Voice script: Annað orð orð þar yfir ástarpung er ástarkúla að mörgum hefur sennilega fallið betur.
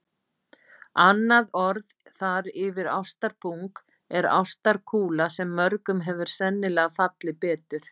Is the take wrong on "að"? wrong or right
wrong